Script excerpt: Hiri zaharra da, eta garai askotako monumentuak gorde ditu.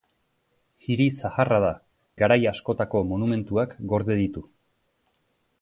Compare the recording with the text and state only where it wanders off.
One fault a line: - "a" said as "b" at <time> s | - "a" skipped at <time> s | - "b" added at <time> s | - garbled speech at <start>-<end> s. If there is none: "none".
- "eta" skipped at 1.7 s